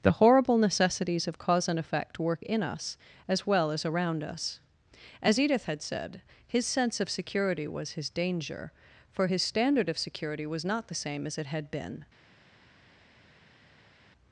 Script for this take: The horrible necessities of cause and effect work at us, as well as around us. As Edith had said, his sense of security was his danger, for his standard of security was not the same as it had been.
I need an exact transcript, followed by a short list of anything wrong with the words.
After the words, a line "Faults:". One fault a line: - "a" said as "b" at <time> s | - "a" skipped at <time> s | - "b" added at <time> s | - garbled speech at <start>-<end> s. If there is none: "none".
The horrible necessities of cause and effect work in us, as well as around us. As Edith had said, his sense of security was his danger, for his standard of security was not the same as it had been.
Faults:
- "at" said as "in" at 2.4 s